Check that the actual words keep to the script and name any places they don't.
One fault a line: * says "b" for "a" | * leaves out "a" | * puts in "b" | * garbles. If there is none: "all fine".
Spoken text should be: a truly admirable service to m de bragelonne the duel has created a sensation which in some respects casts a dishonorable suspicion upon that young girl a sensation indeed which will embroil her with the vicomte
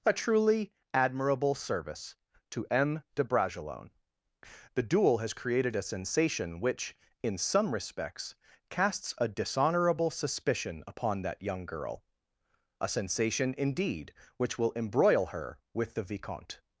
all fine